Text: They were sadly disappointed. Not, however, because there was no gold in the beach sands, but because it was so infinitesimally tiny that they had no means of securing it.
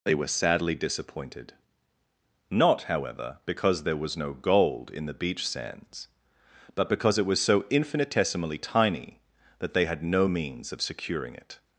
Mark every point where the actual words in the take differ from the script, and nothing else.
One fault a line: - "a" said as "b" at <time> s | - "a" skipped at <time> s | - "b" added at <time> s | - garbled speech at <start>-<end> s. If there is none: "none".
none